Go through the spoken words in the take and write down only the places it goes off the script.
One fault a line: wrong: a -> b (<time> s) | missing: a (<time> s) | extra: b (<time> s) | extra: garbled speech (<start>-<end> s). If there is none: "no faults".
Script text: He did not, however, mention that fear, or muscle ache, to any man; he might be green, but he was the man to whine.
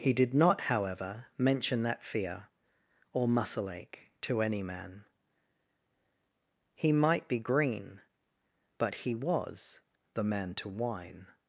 no faults